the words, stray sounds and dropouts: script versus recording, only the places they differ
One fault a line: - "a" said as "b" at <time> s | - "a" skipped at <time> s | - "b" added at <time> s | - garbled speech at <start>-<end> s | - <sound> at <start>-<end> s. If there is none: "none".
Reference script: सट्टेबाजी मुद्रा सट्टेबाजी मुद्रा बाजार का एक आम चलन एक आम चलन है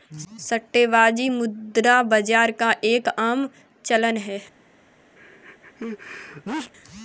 - "सट्टेबाजी मुद्रा" skipped at 2.0 s
- "एक आम चलन" skipped at 4.2 s
- sneeze at 5.2-6.7 s